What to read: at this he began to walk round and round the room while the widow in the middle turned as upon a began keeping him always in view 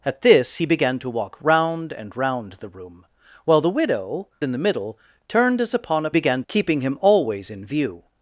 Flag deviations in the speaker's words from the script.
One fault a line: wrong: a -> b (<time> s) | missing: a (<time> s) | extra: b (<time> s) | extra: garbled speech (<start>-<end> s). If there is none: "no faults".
no faults